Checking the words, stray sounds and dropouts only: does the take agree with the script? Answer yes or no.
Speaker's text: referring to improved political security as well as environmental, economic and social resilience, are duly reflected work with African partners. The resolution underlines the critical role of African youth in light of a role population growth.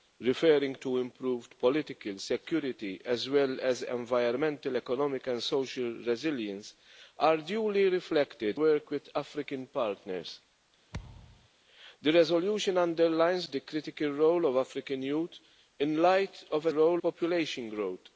no